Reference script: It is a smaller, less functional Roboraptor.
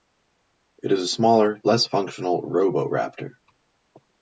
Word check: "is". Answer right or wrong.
right